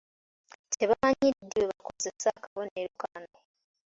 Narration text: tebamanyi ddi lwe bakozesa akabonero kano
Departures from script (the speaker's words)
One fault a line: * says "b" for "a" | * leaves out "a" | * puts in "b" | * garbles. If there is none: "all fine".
all fine